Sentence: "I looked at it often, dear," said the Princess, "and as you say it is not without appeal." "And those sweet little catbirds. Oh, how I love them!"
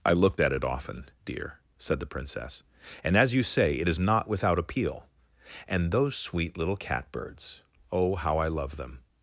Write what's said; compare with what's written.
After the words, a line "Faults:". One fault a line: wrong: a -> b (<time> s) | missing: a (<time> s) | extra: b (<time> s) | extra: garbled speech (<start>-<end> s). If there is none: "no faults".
"I looked at it often, dear," said the Princess, "and as you say it is not without appeal." "And those sweet little catbirds. Oh, how I love them!"
Faults:
no faults